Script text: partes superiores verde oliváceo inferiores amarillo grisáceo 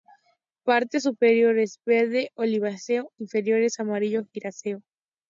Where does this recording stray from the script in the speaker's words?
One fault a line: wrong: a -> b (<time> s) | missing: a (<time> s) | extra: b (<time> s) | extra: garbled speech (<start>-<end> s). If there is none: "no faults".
no faults